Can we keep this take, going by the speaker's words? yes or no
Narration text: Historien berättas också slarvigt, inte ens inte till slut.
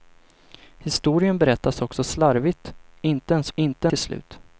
yes